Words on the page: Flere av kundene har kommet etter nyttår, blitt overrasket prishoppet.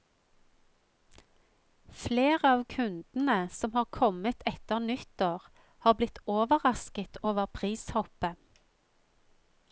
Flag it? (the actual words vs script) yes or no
yes